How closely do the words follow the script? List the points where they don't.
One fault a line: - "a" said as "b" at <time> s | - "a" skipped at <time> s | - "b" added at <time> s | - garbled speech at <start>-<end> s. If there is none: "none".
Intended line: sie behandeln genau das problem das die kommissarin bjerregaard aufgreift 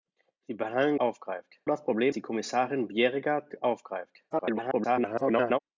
- "genau" said as "aufgreift" at 1.0 s
- "das" skipped at 2.1 s
- garbled speech at 4.3-5.6 s